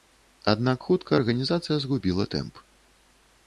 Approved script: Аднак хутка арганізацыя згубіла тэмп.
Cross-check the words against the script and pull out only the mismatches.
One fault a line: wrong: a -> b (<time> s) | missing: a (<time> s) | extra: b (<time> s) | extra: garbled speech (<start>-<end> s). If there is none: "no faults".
no faults